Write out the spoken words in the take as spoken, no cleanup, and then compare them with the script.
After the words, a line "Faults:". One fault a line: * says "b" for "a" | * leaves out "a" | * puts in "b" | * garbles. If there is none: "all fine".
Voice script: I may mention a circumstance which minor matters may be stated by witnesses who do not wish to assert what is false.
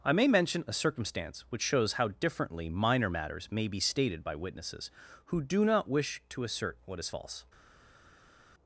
I may mention a circumstance which shows how differently minor matters may be stated by witnesses who do not wish to assert what is false.
Faults:
* puts in "shows how differently"